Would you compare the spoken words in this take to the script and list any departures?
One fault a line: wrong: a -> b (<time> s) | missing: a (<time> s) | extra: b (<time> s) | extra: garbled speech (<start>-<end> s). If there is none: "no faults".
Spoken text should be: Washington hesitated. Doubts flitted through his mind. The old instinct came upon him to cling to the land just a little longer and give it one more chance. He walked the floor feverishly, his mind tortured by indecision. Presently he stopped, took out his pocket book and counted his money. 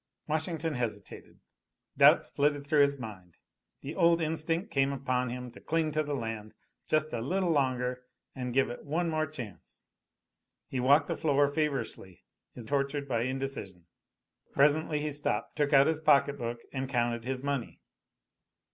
missing: mind (12.7 s)